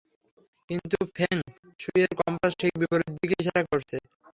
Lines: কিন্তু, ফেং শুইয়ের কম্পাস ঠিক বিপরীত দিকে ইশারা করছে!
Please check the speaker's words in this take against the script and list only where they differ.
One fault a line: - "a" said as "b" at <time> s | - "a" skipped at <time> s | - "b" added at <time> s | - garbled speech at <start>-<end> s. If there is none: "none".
none